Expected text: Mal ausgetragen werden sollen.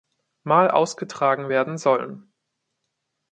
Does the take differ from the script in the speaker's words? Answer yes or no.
no